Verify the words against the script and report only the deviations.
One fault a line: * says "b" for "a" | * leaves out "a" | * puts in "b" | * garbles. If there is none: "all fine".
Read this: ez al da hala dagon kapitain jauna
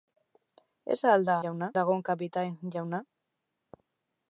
* says "jauna" for "hala"